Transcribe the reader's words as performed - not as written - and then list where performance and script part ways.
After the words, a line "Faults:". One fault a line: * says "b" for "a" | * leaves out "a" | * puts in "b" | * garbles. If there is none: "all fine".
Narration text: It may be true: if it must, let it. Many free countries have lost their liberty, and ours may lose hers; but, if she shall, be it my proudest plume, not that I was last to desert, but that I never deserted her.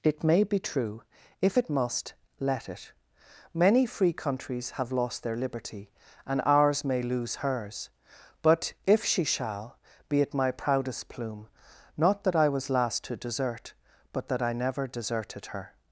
It may be true: if it must, let it. Many free countries have lost their liberty, and ours may lose hers; but, if she shall, be it my proudest plume, not that I was last to desert, but that I never deserted her.
Faults:
all fine